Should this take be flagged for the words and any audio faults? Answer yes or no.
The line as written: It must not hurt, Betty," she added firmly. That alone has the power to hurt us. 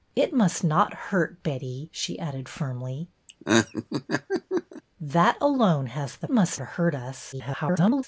yes